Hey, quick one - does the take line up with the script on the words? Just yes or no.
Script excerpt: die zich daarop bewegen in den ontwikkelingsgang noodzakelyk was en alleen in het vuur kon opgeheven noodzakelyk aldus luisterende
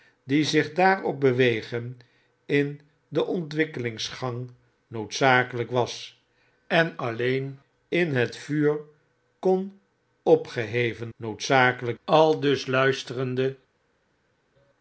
yes